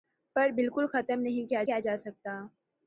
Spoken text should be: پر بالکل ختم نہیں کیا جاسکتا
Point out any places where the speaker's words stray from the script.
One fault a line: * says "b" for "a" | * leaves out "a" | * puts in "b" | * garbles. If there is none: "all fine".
* puts in "کیا"